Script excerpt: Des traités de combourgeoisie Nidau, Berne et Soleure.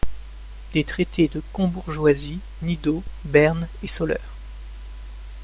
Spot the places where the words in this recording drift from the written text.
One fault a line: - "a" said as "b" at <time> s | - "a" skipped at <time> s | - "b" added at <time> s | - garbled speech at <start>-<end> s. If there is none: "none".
none